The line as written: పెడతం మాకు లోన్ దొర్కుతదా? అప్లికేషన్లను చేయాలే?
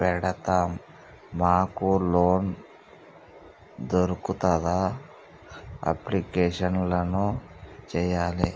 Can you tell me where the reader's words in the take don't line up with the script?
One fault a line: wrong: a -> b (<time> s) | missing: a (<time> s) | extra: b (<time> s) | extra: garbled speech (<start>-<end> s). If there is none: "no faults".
no faults